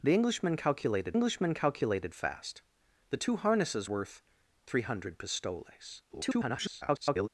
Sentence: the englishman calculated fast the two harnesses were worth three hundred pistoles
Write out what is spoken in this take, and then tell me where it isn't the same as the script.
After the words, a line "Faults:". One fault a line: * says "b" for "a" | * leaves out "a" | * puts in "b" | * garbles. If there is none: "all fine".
the englishman calculated englishman calculated fast the two harnesses worth three hundred pistoles [garbled]
Faults:
* puts in "englishman calculated"
* leaves out "were"
* garbles